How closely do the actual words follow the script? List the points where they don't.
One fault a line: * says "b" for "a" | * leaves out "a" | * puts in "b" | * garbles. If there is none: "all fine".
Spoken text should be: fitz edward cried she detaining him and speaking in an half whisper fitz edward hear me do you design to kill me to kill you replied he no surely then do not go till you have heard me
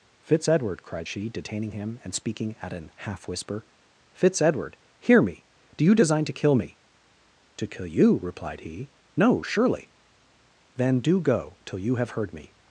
* says "at" for "in"
* leaves out "not"